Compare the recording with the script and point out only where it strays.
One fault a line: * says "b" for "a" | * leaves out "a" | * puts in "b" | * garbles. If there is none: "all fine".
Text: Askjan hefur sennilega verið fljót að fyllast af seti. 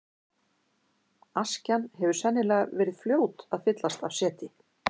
all fine